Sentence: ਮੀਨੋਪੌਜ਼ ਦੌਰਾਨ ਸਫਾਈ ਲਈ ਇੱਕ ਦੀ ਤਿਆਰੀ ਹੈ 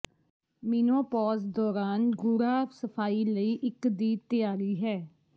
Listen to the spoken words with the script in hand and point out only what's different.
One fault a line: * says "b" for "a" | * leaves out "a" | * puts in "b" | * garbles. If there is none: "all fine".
* puts in "ਗੂੜ੍ਹਾ"